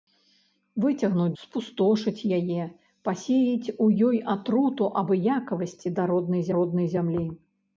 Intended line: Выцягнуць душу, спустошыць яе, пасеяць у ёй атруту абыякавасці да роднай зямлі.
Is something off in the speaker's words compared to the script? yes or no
yes